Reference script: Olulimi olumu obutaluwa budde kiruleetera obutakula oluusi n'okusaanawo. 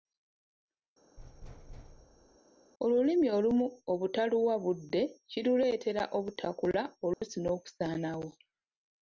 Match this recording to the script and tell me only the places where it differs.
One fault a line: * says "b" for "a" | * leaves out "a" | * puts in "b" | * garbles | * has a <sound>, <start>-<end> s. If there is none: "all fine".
* has a thud, 1.2-2.4 s
* has a dropout, 7.1-7.2 s